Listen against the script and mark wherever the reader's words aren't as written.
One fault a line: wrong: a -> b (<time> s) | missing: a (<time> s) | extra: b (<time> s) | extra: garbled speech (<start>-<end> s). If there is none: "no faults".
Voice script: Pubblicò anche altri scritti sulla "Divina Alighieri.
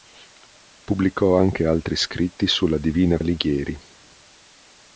no faults